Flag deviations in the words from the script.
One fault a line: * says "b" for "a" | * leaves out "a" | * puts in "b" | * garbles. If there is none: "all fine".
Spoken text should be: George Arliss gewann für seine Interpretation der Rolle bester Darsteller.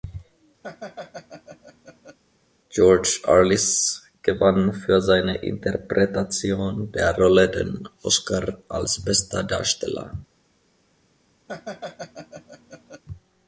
* puts in "den Oscar als"